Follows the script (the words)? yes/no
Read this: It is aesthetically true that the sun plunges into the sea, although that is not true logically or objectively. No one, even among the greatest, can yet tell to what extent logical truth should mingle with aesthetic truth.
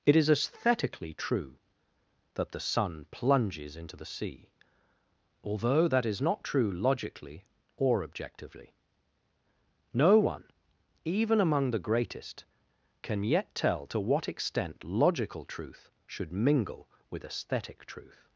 yes